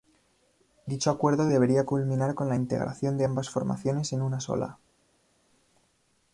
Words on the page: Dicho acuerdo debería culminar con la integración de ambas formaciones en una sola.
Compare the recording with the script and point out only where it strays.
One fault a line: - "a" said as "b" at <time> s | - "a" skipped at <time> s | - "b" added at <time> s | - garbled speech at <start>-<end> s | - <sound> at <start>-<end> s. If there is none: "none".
none